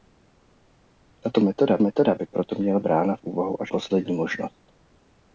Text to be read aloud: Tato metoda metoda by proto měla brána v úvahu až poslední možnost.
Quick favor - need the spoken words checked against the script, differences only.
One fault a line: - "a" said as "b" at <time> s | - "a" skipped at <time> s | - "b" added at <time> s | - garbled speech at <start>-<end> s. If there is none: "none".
none